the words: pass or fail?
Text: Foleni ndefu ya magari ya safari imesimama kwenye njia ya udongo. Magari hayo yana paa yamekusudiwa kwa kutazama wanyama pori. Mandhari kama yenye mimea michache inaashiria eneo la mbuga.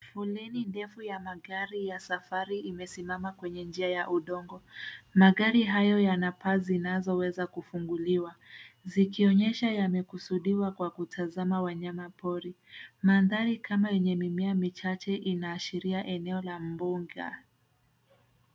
fail